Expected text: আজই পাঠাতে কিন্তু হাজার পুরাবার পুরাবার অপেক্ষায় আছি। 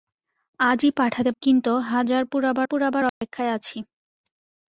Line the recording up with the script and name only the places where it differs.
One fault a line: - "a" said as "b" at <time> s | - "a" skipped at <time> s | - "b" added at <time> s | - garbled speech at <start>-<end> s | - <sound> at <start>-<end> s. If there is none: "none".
- dropout at 3.1-3.2 s